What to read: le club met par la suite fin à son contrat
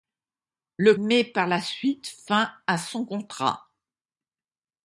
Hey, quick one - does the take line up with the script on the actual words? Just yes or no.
no